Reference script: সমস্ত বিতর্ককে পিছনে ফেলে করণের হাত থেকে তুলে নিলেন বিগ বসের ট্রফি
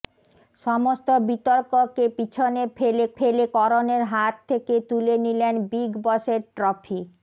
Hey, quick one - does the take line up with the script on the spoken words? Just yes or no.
no